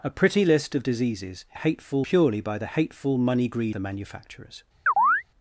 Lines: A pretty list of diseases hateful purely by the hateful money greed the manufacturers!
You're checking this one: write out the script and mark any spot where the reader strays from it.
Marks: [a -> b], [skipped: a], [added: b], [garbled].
A pretty list of diseases hateful purely by the hateful money greed the manufacturers!